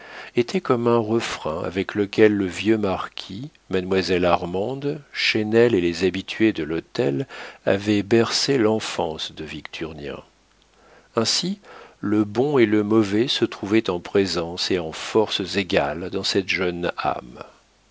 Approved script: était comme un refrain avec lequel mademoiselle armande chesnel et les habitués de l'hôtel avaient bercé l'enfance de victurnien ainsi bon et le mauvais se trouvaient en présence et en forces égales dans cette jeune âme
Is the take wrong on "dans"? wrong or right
right